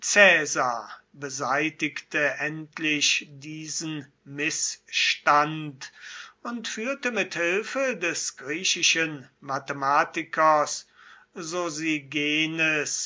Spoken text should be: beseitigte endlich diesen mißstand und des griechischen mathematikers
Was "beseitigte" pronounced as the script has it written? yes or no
yes